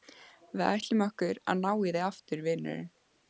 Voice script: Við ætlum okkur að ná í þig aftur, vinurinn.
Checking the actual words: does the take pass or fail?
pass